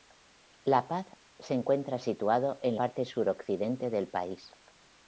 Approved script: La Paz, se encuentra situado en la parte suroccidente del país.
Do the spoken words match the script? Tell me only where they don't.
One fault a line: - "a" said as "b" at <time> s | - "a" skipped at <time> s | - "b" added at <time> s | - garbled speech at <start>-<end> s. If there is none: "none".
- "la" skipped at 2.8 s